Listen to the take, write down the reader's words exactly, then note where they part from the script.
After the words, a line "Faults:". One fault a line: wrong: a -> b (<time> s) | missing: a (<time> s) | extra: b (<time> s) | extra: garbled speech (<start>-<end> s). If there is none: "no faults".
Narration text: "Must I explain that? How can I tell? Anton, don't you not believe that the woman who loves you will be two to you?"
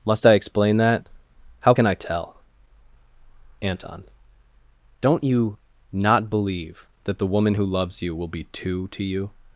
"Must I explain that? How can I tell? Anton, don't you not believe that the woman who loves you will be two to you?"
Faults:
no faults